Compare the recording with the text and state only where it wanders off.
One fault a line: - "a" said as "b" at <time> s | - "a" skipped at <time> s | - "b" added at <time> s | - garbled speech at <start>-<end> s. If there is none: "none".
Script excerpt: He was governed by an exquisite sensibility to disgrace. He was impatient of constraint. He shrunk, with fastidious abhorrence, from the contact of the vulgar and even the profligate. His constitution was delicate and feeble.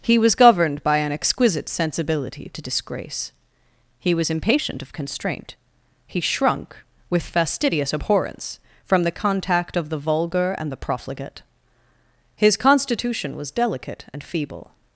- "even" skipped at 10.7 s